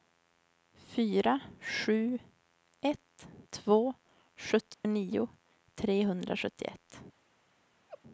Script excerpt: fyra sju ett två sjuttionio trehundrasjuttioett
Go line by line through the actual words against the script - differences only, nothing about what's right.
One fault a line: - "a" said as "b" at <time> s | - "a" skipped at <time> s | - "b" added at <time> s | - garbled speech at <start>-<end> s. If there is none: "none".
none